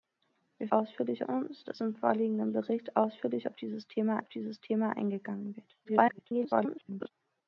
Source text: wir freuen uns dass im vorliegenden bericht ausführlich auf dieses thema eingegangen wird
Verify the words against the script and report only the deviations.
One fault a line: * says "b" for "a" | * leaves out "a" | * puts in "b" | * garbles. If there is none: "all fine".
* says "ausführlich" for "freuen"
* puts in "auf dieses thema"
* garbles